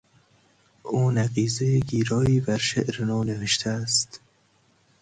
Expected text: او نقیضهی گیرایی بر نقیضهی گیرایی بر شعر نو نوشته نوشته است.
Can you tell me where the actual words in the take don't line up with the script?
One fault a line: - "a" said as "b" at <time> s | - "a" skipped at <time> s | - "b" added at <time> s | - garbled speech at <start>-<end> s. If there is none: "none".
- "نقیضهی گیرایی بر" skipped at 2.6 s
- "نوشته" skipped at 3.7 s